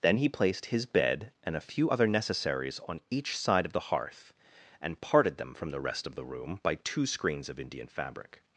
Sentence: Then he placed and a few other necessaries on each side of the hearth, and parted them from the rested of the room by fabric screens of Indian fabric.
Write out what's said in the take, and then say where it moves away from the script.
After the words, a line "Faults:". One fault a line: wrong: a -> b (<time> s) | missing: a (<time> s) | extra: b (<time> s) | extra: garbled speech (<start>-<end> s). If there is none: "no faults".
Then he placed his bed and a few other necessaries on each side of the hearth, and parted them from the rest of the room by two screens of Indian fabric.
Faults:
extra: his bed (0.7 s)
wrong: rested -> rest (5.8 s)
wrong: fabric -> two (6.8 s)